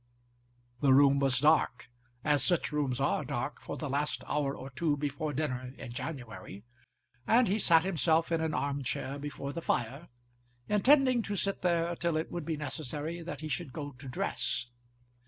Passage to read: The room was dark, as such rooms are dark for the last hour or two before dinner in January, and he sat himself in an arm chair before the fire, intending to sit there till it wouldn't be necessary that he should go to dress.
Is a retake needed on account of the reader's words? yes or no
yes